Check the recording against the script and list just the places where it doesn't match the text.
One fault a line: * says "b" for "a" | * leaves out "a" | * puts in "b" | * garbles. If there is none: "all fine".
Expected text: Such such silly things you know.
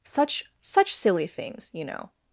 all fine